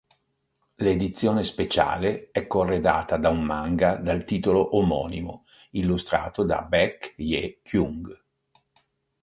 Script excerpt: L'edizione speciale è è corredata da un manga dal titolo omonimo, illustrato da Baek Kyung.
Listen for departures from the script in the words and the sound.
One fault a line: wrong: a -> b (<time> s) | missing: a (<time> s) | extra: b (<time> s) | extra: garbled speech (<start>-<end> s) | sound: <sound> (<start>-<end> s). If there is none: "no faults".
missing: è (2.5 s)
extra: Hye (7.2 s)